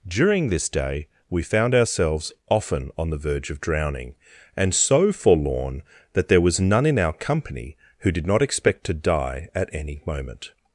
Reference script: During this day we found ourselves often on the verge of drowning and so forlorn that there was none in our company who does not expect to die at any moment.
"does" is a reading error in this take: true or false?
true